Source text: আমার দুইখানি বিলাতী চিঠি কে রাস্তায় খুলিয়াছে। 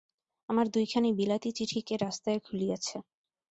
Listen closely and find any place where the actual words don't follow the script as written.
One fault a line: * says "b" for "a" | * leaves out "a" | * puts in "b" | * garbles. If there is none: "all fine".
all fine